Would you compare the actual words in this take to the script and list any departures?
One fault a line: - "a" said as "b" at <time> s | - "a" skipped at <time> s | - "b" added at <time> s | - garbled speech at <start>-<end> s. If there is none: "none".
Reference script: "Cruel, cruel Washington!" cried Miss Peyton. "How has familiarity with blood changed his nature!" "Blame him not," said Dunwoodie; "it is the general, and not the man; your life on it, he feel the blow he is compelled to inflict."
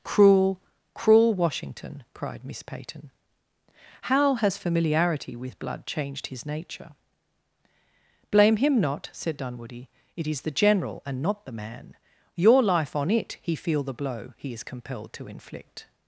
none